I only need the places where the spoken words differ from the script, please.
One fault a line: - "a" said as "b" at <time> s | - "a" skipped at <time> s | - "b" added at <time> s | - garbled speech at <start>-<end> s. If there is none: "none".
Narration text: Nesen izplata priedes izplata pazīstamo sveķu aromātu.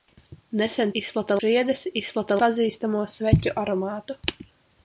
none